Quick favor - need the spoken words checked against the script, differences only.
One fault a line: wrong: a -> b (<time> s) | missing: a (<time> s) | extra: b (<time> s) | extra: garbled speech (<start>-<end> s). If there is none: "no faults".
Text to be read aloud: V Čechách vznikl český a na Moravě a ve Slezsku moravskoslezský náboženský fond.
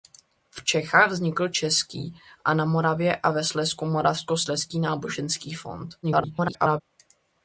extra: garbled speech (6.0-6.8 s)